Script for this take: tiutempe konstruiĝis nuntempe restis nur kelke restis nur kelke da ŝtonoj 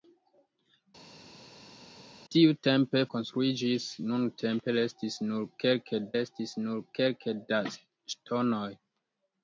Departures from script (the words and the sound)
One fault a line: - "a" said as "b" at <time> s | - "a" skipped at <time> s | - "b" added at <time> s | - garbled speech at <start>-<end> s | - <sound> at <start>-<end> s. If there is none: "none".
none